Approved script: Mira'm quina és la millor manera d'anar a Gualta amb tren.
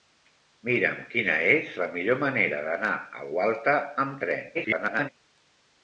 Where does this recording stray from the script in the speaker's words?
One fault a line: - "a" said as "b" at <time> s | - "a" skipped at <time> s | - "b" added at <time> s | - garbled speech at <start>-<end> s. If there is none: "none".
- garbled speech at 4.5-5.1 s